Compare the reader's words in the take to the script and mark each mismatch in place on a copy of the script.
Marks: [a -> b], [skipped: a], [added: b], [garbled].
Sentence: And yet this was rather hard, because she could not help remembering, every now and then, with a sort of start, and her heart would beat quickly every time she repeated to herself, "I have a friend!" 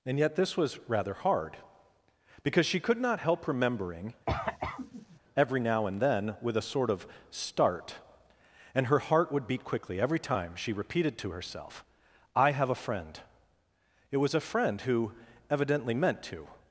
And yet this was rather hard, because she could not help remembering, every now and then, with a sort of start, and her heart would beat quickly every time she repeated to herself, "I have a friend!" [added: It was a friend who evidently meant to]